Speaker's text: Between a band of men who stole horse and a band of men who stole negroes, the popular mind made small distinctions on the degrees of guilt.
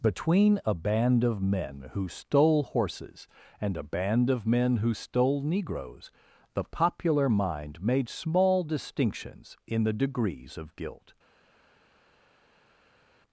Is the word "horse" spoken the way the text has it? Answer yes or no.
no